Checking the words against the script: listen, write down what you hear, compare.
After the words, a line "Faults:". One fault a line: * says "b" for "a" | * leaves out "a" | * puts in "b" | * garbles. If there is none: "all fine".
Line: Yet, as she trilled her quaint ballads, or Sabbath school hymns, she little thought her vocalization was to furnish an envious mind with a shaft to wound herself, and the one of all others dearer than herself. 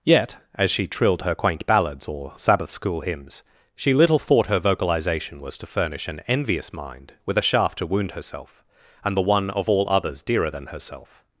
Yet, as she trilled her quaint ballads, or Sabbath school hymns, she little thought her vocalization was to furnish an envious mind with a shaft to wound herself, and the one of all others dearer than herself.
Faults:
all fine